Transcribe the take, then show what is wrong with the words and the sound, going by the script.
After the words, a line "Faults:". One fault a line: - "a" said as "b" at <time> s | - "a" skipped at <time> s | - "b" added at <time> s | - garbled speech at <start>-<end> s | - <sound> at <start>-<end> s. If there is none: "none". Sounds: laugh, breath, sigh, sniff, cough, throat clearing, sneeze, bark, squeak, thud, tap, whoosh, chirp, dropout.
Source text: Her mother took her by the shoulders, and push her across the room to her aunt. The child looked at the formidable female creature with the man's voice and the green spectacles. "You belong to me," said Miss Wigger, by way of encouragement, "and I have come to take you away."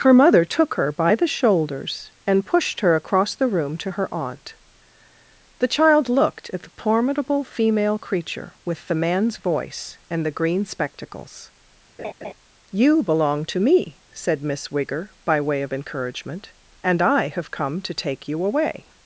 Her mother took her by the shoulders, and pushed her across the room to her aunt. The child looked at the formidable female creature with the man's voice and the green spectacles. "You belong to me," said Miss Wigger, by way of encouragement, "and I have come to take you away."
Faults:
- "push" said as "pushed" at 2.4 s
- laugh at 12.0-12.3 s